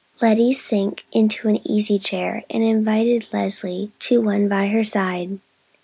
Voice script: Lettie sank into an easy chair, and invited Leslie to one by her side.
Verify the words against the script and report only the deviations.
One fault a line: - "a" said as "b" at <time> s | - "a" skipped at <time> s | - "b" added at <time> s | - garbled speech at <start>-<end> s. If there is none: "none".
none